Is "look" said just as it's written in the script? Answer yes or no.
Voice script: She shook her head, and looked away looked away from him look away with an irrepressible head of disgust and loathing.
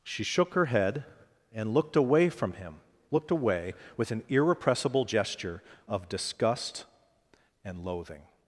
no